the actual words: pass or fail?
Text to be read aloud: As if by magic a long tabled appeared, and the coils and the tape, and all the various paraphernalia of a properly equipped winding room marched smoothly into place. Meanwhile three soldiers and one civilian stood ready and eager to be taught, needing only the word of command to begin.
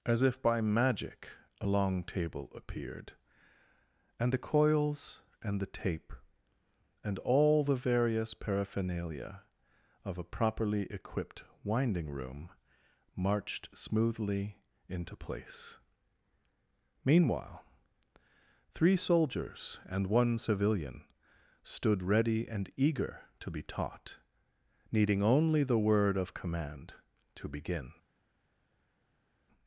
fail